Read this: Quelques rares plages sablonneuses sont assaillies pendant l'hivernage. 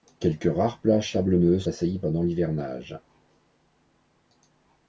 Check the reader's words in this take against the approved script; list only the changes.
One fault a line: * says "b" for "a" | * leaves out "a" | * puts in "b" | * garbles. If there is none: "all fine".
* leaves out "sont"